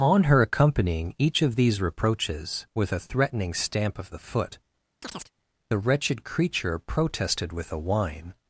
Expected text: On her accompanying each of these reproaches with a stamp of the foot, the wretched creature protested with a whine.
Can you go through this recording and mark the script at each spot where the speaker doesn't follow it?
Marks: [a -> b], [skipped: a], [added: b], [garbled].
On her accompanying each of these reproaches with a [added: threatening] stamp of the foot, the wretched creature protested with a whine.